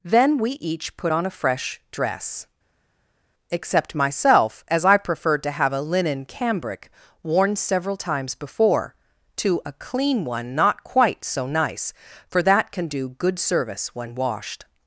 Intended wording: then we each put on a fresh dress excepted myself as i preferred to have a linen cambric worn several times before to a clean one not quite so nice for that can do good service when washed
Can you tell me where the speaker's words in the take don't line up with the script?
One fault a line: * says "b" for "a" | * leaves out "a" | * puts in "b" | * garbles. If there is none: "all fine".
* says "except" for "excepted"